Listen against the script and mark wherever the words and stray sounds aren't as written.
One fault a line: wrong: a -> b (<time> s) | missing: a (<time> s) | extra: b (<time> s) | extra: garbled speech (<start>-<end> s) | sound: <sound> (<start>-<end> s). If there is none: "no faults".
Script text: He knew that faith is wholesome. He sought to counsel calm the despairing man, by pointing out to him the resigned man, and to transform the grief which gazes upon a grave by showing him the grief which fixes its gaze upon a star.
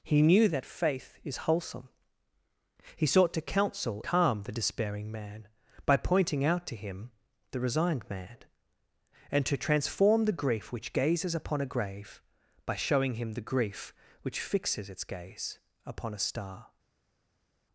no faults